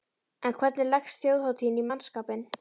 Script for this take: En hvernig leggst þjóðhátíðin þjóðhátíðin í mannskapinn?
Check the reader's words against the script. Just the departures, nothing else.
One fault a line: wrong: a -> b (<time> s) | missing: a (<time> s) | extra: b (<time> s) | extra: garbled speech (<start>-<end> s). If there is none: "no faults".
missing: þjóðhátíðin (1.8 s)